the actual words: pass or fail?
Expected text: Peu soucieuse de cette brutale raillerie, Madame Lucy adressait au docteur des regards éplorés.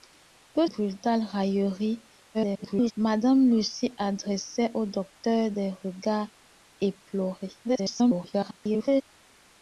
fail